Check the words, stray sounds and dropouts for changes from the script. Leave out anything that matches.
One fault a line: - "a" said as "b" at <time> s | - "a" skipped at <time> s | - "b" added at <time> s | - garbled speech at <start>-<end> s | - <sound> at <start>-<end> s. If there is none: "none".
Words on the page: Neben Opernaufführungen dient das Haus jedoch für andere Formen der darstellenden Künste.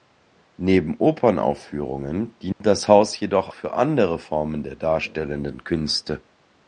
- dropout at 2.5-2.6 s